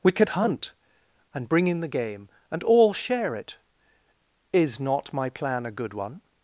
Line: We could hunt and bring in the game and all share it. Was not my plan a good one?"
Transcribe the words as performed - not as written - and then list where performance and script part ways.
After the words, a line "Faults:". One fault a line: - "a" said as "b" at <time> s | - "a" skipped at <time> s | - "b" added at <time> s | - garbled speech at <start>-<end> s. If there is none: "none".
We could hunt and bring in the game and all share it. Is not my plan a good one?"
Faults:
- "Was" said as "Is" at 4.5 s